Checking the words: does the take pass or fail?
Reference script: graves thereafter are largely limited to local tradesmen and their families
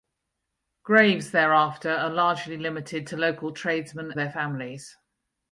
fail